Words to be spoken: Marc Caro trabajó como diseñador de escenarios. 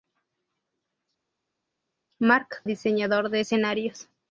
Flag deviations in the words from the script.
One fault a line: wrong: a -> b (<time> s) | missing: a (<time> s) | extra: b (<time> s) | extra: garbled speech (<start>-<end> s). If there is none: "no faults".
missing: Caro trabajó como (2.6 s)